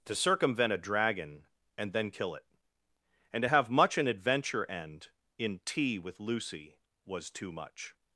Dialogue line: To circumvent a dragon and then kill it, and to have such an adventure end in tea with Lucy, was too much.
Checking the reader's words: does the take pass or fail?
fail